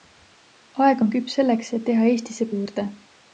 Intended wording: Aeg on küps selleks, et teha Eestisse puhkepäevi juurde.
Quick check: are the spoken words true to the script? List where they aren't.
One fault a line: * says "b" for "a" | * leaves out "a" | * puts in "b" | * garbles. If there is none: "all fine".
* leaves out "puhkepäevi"